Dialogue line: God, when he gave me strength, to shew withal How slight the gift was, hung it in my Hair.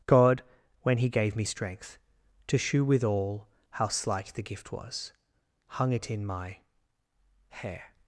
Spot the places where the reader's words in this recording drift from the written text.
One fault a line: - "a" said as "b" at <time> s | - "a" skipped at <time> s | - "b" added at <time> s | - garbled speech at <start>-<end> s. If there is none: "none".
none